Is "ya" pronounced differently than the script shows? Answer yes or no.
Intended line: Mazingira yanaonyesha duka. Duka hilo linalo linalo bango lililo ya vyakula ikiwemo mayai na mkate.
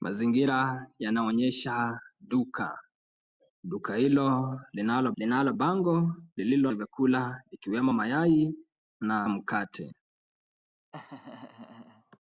no